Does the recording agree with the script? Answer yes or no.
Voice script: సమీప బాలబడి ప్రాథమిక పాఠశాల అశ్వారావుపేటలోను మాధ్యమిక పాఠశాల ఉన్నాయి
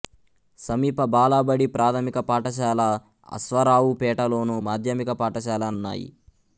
yes